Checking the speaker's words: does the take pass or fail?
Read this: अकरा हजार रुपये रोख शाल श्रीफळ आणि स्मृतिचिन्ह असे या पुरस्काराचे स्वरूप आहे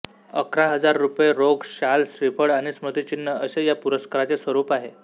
pass